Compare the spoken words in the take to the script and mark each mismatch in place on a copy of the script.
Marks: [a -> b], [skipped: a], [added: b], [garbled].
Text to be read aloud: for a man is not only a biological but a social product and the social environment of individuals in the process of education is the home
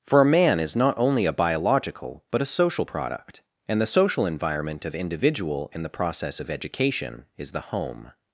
for a man is not only a biological but a social product and the social environment of [individuals -> individual] in the process of education is the home